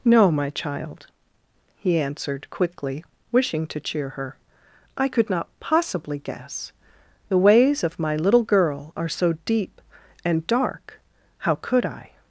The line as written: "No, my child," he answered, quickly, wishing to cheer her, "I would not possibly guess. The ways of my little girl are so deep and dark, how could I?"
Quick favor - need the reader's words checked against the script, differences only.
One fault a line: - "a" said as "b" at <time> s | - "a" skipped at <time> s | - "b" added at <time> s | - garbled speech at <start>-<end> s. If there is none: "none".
- "would" said as "could" at 5.1 s